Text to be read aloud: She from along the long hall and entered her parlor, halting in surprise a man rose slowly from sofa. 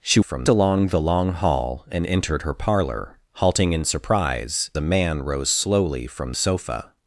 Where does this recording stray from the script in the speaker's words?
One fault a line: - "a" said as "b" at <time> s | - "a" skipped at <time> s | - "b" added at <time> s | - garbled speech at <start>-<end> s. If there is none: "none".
none